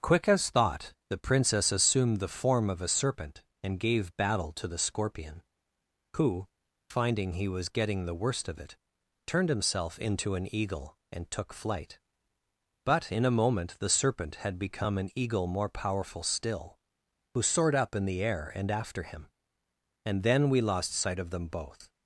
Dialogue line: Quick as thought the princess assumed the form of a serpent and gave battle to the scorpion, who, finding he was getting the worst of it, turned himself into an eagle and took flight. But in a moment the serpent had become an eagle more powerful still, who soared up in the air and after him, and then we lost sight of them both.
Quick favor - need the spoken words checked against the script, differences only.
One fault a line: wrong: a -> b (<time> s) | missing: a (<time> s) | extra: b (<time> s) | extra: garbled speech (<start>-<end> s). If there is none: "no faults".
no faults